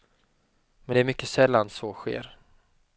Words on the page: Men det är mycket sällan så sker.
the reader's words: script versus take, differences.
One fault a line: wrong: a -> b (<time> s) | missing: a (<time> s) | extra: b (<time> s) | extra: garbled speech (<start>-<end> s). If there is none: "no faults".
no faults